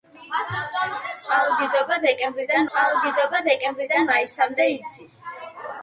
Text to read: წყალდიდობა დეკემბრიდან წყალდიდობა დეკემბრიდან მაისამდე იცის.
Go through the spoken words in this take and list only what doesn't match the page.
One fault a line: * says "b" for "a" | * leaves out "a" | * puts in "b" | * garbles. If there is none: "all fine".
all fine